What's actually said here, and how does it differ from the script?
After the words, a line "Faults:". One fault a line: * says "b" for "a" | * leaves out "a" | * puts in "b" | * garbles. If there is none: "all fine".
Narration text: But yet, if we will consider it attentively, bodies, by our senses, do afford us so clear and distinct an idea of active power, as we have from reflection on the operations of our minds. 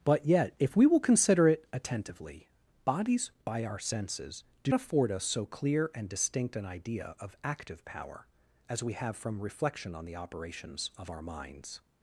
But yet, if we will consider it attentively, bodies, by our senses, do afford us so clear and distinct an idea of active power, as we have from reflection on the operations of our minds.
Faults:
all fine